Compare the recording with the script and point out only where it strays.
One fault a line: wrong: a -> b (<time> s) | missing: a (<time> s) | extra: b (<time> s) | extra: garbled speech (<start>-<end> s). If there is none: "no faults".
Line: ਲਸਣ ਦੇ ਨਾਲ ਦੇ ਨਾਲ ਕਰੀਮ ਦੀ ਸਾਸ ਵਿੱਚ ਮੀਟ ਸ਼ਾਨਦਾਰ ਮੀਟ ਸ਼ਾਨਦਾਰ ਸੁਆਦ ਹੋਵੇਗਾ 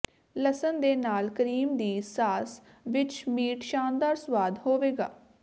missing: ਦੇ ਨਾਲ (1.3 s)
missing: ਮੀਟ ਸ਼ਾਨਦਾਰ (4.1 s)